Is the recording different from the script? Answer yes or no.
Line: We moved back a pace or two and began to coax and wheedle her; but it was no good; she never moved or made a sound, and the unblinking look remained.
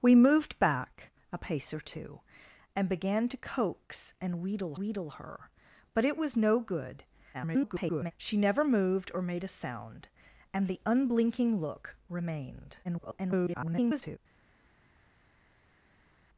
yes